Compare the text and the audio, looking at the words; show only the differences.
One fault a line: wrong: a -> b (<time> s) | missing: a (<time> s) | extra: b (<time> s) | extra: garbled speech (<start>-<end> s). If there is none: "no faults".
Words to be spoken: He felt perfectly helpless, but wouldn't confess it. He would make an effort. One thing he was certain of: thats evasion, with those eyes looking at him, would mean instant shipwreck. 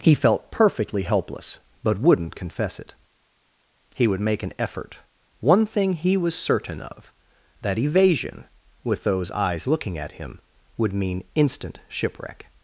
wrong: thats -> that (7.6 s)